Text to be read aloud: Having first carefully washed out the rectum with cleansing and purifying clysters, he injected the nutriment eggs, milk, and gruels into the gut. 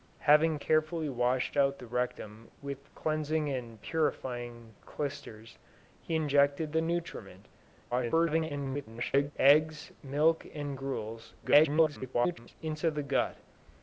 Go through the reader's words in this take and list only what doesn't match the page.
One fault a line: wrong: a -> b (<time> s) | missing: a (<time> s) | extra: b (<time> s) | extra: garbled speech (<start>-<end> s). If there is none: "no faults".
missing: first (0.6 s)
extra: garbled speech (7.9-9.3 s)
extra: garbled speech (11.4-12.6 s)